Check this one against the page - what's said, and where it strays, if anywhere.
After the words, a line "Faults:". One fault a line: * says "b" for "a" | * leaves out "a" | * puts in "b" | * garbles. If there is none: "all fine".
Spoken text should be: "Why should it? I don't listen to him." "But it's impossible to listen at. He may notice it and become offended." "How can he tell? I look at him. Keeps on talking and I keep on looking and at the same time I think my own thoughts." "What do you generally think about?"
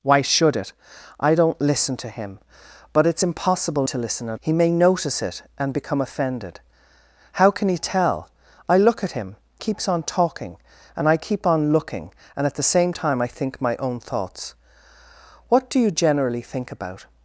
"Why should it? I don't listen to him." "But it's impossible to listen at. He may notice it and become offended." "How can he tell? I look at him. Keeps on talking and I keep on looking and at the same time I think my own thoughts." "What do you generally think about?"
Faults:
all fine